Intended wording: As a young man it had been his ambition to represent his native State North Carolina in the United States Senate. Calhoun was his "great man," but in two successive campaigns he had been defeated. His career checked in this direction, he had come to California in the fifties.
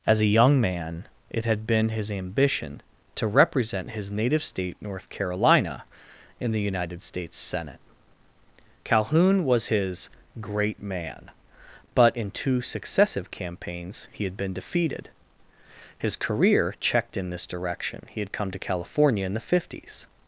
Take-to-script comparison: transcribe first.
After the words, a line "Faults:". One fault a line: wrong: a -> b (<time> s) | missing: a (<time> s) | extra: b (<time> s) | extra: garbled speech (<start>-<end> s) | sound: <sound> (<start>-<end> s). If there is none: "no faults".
As a young man it had been his ambition to represent his native State North Carolina in the United States Senate. Calhoun was his "great man," but in two successive campaigns he had been defeated. His career checked in this direction, he had come to California in the fifties.
Faults:
no faults